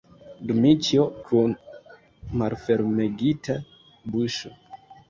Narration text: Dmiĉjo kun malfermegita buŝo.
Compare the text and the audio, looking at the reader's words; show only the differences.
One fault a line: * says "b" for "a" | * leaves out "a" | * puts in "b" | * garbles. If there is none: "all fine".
all fine